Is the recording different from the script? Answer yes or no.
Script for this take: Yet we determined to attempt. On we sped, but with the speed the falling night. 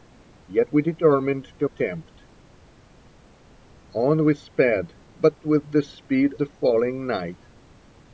no